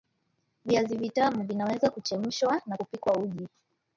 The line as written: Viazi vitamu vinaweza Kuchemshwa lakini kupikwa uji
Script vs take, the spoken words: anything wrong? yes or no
yes